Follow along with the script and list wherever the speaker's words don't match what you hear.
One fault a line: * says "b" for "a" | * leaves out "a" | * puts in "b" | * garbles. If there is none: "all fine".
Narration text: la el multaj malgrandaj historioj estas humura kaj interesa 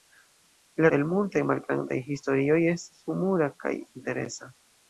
all fine